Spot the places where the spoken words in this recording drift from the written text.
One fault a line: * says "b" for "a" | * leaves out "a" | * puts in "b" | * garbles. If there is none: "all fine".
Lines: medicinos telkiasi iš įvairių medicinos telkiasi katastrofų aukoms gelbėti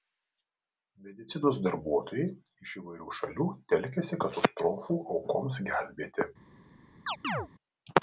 * says "darbuotojai" for "telkiasi"
* says "šalių" for "medicinos"